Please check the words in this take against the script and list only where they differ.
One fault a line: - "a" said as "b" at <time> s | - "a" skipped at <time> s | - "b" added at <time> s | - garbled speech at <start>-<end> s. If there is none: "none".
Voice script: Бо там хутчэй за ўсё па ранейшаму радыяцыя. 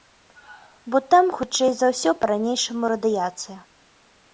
none